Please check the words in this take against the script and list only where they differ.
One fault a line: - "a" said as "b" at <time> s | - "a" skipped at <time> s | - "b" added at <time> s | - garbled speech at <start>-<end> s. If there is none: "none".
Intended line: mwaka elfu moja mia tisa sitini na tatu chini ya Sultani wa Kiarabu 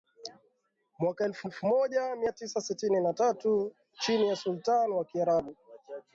- "elfu" added at 1.4 s